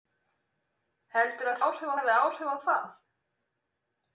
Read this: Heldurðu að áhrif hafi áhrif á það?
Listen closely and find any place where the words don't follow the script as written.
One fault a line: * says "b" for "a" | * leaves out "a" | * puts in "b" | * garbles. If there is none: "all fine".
all fine